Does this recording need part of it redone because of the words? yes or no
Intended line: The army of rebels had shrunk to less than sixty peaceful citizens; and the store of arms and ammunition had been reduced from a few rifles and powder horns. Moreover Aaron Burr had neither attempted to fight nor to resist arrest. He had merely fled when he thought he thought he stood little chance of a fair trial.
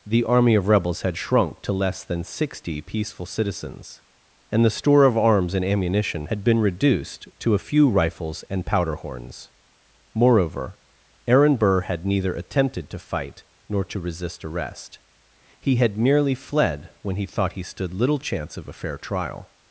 yes